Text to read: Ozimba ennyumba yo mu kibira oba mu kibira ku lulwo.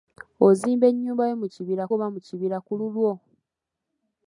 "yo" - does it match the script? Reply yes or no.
yes